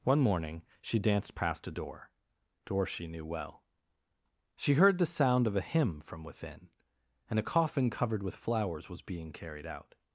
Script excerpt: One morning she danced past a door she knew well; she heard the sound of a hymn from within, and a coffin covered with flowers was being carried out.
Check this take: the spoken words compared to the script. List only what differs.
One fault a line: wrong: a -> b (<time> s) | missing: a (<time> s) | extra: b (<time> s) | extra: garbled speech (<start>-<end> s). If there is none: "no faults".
extra: door (2.7 s)